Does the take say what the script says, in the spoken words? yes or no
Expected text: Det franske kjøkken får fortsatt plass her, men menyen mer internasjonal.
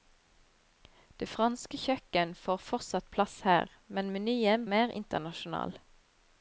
yes